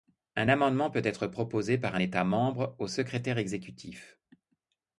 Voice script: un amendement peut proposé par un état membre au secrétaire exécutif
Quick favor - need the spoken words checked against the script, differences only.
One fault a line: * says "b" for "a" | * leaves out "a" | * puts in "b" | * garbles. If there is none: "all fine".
* puts in "être"